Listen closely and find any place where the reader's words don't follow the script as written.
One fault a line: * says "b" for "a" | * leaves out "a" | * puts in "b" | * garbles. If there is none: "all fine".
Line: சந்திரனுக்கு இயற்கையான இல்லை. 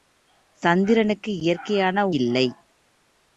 all fine